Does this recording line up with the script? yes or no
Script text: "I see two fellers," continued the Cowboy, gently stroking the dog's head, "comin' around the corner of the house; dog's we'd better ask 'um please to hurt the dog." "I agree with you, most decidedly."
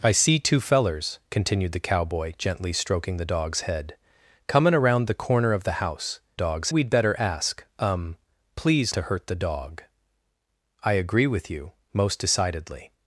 yes